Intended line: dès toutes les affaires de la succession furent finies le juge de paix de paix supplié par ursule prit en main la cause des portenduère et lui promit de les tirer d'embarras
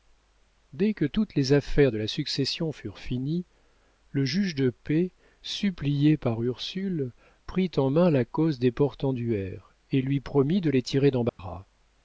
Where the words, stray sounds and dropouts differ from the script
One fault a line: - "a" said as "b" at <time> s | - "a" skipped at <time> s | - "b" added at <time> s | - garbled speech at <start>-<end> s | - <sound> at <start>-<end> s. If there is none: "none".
- "que" added at 0.9 s
- "de paix" skipped at 5.1 s
- dropout at 11.3-11.4 s